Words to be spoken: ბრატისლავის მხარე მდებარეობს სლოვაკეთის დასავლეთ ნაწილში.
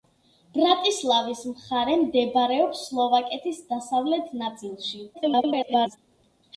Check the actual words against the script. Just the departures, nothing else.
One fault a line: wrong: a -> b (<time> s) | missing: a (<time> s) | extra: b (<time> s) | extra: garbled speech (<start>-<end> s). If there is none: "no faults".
extra: garbled speech (5.1-6.0 s)